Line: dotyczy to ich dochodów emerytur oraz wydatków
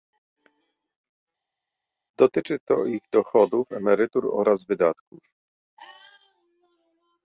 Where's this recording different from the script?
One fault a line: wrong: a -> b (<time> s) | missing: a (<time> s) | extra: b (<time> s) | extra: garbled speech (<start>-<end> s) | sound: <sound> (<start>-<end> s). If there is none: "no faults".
no faults